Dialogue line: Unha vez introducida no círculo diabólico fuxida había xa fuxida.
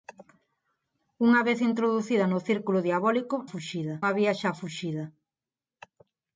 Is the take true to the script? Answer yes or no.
yes